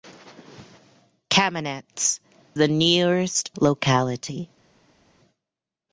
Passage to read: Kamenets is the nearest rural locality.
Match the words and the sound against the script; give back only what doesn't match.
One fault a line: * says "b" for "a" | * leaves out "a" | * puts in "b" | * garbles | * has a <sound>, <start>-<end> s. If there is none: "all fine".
* leaves out "is"
* leaves out "rural"